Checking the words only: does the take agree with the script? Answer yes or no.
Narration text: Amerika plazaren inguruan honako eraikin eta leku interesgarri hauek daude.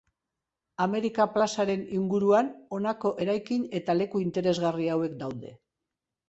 yes